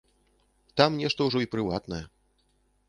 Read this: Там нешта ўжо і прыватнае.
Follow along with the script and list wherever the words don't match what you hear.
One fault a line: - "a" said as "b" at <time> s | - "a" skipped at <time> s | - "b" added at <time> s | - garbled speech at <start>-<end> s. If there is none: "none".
none